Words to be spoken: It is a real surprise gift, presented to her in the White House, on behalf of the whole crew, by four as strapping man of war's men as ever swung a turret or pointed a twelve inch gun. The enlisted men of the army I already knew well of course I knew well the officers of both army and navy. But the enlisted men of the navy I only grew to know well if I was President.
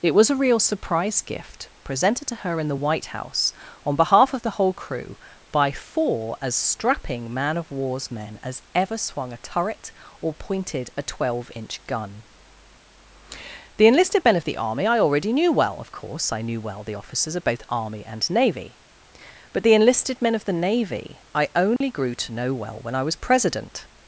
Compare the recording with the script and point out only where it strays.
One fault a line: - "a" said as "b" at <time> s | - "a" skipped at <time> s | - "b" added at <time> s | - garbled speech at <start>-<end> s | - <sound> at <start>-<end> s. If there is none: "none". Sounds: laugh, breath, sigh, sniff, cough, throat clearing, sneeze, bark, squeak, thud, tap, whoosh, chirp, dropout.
- "is" said as "was" at 0.1 s
- dropout at 21.8-21.8 s
- "if" said as "when" at 22.8 s